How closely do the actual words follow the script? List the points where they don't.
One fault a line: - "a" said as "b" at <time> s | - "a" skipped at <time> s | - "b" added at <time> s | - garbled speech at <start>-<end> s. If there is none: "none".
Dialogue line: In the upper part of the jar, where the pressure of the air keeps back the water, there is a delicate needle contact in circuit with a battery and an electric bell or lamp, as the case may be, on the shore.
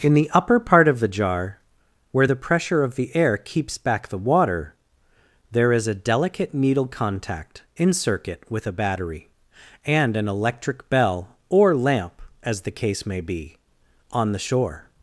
none